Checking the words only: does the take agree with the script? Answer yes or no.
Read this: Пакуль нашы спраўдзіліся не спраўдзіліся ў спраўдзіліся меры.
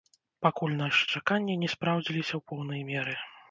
no